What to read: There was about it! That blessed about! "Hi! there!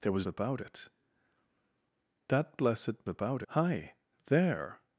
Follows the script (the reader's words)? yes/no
yes